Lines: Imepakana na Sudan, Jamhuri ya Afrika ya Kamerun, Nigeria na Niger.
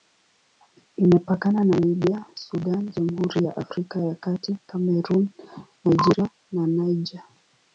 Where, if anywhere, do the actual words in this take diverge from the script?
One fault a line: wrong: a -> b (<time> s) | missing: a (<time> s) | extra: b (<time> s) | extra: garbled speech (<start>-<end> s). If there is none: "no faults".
extra: Libya (1.9 s)
extra: Kati (4.2 s)